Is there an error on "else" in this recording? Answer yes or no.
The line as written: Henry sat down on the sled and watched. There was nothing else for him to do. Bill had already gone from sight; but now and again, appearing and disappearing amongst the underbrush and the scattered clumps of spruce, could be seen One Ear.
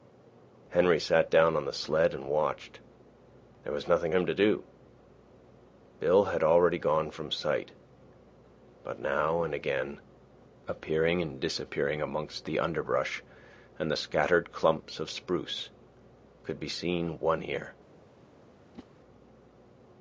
yes